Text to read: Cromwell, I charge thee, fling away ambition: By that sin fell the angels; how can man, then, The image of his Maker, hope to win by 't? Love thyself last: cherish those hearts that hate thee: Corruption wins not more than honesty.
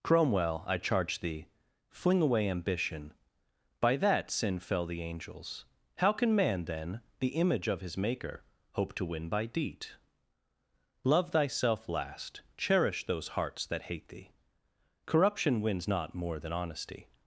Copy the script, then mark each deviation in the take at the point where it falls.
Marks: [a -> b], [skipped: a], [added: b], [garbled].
Cromwell, I charge thee, fling away ambition: By that sin fell the angels; how can man, then, The image of his Maker, hope to win by ['t? -> deed] Love thyself last: cherish those hearts that hate thee: Corruption wins not more than honesty.